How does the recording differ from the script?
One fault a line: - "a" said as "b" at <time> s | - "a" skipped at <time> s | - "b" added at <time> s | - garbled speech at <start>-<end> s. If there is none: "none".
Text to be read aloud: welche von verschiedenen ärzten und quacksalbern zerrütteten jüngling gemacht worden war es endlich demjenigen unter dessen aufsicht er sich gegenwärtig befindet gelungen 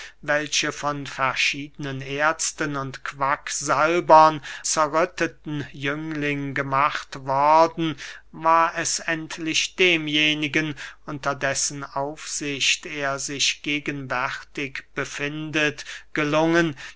none